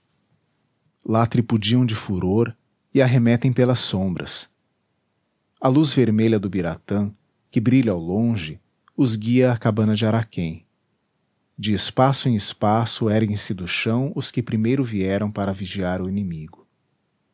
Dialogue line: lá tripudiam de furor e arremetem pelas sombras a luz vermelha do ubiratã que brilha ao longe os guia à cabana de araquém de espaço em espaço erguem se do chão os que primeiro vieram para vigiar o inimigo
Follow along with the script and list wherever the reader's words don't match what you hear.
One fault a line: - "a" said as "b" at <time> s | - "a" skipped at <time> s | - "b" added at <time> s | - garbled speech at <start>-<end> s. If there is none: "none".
none